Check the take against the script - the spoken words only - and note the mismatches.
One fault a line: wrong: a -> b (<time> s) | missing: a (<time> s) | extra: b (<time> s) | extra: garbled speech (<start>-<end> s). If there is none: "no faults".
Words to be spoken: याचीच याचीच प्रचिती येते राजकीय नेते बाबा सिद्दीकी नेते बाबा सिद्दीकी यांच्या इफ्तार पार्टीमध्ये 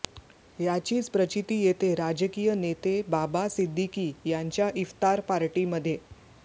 missing: याचीच (1.1 s)
missing: नेते बाबा सिद्दीकी (4.1 s)